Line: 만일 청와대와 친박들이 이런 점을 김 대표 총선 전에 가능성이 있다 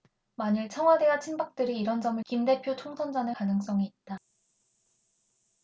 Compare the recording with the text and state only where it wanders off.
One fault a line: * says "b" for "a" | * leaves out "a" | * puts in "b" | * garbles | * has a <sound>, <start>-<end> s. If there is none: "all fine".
all fine